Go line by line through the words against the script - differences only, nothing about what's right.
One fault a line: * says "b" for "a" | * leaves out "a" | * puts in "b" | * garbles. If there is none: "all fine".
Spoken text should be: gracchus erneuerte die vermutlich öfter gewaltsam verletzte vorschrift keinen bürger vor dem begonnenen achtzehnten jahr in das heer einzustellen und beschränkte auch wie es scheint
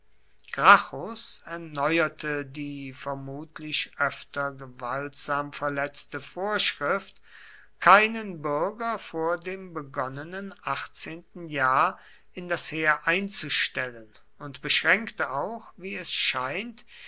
all fine